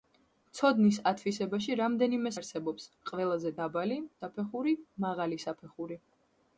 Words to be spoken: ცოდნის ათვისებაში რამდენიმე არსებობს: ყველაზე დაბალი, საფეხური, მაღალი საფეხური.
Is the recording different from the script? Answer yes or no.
no